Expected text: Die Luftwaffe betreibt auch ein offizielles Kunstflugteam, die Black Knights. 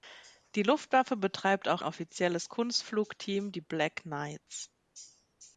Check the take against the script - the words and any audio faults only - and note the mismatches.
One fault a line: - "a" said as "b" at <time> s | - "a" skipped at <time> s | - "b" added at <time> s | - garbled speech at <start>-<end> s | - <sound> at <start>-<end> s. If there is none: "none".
- "ein" skipped at 1.8 s